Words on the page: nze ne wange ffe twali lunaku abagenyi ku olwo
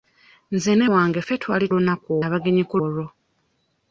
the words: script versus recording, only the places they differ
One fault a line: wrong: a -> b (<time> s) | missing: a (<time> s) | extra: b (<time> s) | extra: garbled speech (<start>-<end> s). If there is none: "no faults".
no faults